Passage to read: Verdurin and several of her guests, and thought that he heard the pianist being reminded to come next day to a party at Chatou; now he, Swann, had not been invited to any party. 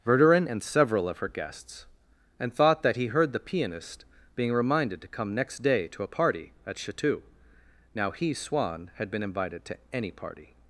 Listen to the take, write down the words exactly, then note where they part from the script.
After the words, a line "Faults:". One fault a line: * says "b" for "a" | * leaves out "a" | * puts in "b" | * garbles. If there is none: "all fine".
Verdurin and several of her guests, and thought that he heard the pianist being reminded to come next day to a party at Chatou; now he, Swann, had been invited to any party.
Faults:
* leaves out "not"